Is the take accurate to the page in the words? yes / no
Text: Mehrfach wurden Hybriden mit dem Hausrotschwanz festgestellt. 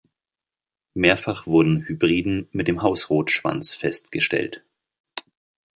yes